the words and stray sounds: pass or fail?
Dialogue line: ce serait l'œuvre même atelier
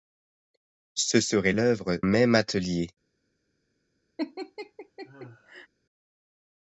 fail